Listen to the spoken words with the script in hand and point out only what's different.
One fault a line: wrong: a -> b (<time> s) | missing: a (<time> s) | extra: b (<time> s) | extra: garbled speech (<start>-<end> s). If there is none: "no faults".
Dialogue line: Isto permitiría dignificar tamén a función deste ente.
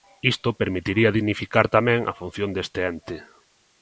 no faults